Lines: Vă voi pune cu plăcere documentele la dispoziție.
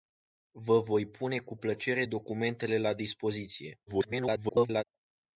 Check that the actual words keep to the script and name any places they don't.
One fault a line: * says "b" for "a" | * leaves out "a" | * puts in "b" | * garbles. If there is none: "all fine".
* garbles